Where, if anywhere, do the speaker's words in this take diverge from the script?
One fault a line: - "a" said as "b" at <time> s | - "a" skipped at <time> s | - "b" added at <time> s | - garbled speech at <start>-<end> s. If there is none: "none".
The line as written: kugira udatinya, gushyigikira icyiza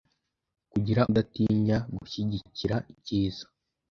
none